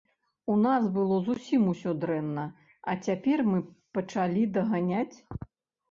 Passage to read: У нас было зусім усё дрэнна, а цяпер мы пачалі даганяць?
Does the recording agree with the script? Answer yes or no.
yes